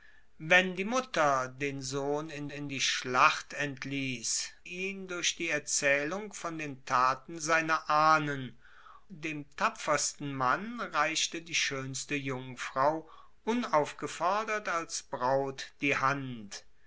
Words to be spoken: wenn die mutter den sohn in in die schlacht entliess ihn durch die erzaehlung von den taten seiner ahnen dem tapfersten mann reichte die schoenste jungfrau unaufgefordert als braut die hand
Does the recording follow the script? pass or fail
pass